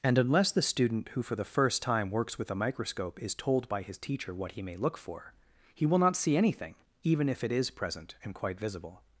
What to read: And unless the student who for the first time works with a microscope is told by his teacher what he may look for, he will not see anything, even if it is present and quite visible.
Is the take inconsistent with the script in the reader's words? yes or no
no